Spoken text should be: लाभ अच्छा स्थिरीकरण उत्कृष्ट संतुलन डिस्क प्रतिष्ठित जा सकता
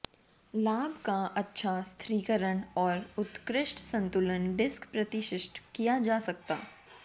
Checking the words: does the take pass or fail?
fail